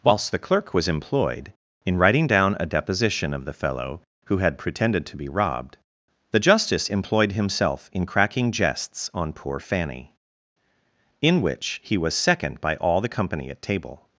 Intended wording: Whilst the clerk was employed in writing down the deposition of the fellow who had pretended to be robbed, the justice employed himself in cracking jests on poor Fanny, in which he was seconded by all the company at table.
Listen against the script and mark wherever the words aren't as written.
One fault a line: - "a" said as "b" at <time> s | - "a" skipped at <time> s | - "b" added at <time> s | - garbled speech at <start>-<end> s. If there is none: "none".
- "the" said as "a" at 2.6 s
- "seconded" said as "second" at 12.2 s